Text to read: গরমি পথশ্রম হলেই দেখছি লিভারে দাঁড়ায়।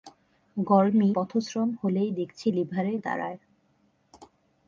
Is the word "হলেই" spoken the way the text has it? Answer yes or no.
yes